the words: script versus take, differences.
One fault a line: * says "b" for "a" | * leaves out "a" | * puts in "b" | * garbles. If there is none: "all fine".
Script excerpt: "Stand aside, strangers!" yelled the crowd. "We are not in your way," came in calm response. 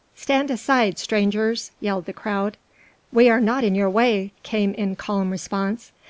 all fine